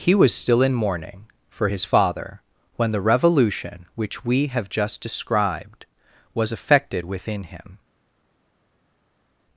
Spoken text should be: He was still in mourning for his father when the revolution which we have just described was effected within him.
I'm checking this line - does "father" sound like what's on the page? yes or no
yes